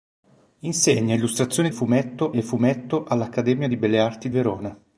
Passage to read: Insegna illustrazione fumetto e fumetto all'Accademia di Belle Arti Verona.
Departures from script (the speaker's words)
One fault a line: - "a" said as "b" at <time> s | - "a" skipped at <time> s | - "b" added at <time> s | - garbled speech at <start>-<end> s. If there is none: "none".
none